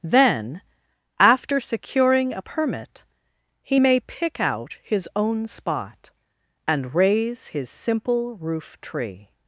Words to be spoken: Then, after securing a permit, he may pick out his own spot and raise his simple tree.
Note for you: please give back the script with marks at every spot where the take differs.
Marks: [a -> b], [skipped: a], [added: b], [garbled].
Then, after securing a permit, he may pick out his own spot and raise his simple [added: roof] tree.